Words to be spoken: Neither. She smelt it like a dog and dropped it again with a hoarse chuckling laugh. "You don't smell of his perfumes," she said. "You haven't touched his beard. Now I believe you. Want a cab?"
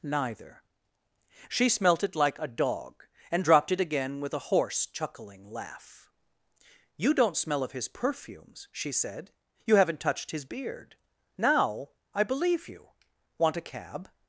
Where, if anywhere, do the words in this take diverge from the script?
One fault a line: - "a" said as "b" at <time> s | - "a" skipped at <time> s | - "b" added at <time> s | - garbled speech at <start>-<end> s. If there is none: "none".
none